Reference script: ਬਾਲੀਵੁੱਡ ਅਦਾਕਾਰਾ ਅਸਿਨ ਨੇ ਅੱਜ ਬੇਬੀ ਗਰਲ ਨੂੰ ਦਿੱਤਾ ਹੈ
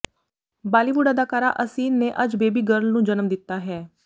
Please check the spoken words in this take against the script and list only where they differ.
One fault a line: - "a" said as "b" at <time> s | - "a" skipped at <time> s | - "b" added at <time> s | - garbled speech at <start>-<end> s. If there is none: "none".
- "ਜਨਮ" added at 3.0 s